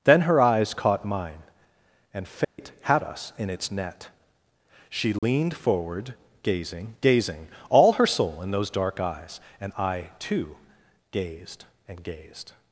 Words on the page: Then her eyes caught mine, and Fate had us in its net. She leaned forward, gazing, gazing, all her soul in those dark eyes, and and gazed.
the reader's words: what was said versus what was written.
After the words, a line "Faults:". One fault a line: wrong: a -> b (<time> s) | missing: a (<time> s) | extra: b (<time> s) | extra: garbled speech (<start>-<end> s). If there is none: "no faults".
Then her eyes caught mine, and Fate had us in its net. She leaned forward, gazing, gazing, all her soul in those dark eyes, and I, too, gazed and gazed.
Faults:
extra: I too gazed (9.8 s)